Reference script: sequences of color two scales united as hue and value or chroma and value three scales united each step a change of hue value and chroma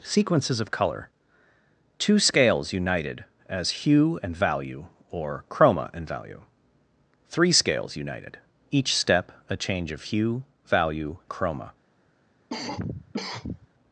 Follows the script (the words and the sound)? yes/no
no